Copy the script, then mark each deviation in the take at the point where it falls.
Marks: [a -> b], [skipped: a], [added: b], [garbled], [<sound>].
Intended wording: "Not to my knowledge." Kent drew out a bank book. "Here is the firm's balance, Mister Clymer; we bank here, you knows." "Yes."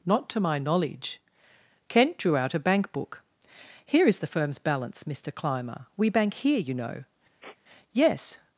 "Not to my knowledge." Kent drew out a bank book. "Here is the firm's balance, Mister Clymer; we bank here, you [knows." -> know] [sniff] "Yes."